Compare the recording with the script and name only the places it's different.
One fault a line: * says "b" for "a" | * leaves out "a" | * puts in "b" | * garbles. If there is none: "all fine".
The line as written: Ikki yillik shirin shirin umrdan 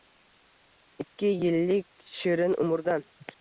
* leaves out "shirin"